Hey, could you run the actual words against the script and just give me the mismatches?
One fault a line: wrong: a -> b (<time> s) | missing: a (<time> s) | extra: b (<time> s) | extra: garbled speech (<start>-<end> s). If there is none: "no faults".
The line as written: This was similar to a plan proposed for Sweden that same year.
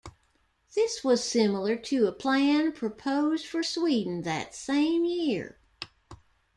no faults